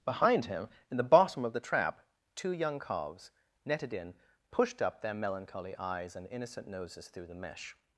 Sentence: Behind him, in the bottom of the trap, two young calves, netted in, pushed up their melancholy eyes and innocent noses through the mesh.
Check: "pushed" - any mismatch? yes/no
no